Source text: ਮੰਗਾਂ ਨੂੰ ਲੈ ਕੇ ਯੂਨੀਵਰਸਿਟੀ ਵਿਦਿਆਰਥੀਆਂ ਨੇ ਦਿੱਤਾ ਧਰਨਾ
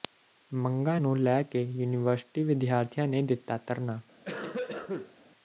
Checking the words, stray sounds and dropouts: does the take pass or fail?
fail